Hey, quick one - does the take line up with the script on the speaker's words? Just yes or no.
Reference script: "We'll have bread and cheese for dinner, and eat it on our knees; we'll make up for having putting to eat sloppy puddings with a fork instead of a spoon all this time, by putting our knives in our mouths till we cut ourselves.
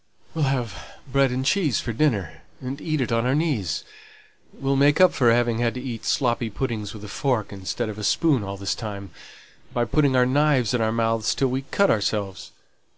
no